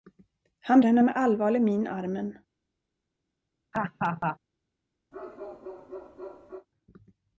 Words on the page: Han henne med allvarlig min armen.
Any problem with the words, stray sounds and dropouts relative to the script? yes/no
yes